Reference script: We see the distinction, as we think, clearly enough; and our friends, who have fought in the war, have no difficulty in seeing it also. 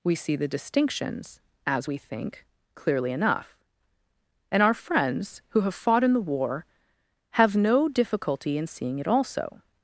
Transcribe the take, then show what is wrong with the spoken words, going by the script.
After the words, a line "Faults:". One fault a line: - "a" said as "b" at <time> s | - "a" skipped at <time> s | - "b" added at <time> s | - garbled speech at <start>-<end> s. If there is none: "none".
We see the distinctions, as we think, clearly enough; and our friends, who have fought in the war, have no difficulty in seeing it also.
Faults:
- "distinction" said as "distinctions" at 0.5 s